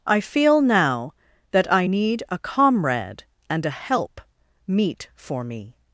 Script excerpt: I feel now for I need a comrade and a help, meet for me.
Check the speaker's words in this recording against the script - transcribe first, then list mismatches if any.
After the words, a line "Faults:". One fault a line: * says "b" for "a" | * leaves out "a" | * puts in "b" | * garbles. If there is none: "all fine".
I feel now that I need a comrade and a help, meet for me.
Faults:
* says "that" for "for"